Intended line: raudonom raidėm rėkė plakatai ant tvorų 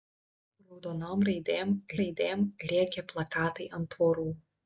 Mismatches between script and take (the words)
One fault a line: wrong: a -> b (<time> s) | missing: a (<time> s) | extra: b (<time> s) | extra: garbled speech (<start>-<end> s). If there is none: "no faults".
extra: raidėm (2.0 s)